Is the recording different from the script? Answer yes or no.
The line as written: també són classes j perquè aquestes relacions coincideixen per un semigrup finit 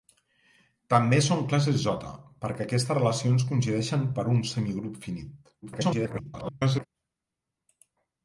yes